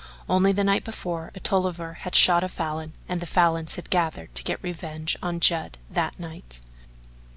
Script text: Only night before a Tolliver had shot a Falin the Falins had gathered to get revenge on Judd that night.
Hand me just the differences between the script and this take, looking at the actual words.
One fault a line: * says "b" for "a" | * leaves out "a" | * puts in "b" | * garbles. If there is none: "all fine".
* puts in "the"
* puts in "and"